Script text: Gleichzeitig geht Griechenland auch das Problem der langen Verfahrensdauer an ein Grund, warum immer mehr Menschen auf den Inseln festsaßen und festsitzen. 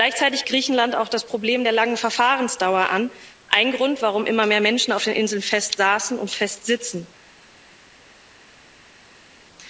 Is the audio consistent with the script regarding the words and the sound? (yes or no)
no